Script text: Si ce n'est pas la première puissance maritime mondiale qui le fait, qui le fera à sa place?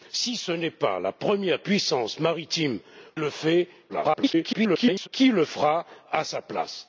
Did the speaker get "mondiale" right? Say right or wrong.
wrong